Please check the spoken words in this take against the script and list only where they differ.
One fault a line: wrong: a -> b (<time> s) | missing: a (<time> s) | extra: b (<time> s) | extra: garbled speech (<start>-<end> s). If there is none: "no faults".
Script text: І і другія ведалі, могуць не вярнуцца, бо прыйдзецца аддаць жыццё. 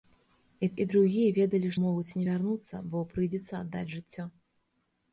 no faults